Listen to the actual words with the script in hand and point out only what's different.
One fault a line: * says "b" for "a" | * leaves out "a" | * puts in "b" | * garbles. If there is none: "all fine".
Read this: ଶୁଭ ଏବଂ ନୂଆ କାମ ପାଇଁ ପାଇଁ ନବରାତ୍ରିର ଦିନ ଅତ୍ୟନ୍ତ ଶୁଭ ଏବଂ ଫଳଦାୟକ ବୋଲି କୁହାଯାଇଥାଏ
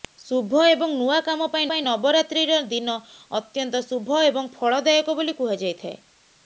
all fine